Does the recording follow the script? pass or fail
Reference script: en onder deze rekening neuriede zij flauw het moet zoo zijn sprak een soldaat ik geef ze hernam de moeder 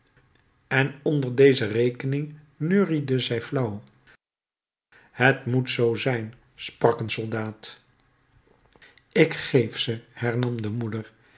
pass